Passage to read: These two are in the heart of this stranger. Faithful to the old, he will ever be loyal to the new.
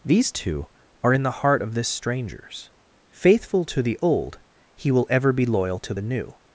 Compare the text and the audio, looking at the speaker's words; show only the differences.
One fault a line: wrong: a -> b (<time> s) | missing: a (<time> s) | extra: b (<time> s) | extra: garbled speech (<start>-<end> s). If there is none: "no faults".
wrong: stranger -> strangers (1.9 s)